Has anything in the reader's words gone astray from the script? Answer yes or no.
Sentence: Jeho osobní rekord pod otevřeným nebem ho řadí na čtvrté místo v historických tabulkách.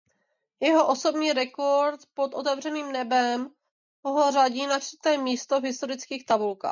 no